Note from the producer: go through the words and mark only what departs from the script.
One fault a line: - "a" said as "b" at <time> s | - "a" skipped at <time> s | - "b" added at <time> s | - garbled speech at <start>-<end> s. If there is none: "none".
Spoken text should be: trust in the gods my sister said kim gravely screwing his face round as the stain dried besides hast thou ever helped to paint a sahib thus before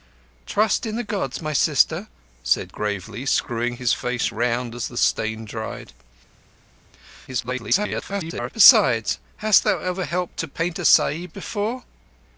- "kim" skipped at 2.7 s
- garbled speech at 7.3-8.5 s
- "thus" skipped at 11.3 s